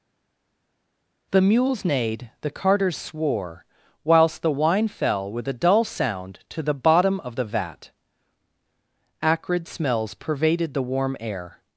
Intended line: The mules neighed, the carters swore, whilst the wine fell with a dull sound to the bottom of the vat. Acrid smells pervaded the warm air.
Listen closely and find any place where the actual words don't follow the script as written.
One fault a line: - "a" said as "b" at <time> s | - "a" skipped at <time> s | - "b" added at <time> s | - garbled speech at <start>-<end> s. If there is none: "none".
none